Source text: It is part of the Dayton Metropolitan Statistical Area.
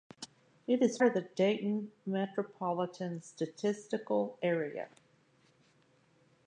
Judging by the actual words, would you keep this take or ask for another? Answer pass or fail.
fail